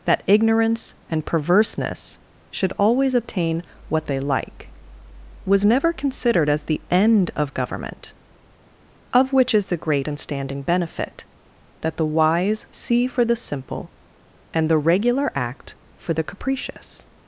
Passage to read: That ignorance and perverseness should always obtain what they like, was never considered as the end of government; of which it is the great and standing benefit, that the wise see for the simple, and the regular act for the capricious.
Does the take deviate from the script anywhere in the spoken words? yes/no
yes